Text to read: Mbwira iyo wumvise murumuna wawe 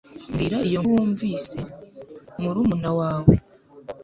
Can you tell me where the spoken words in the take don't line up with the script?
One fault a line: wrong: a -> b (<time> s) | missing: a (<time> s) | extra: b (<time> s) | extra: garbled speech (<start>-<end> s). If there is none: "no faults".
no faults